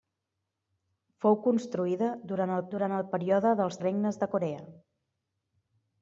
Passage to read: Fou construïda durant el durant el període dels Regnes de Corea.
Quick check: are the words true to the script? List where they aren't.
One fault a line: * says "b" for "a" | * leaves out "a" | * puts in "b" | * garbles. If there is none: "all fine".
all fine